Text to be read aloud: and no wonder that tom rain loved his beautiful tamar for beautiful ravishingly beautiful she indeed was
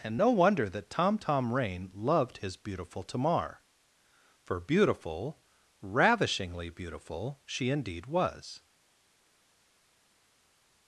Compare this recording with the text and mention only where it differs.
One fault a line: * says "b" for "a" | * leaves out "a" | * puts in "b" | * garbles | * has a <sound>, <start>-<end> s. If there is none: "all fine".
* puts in "tom"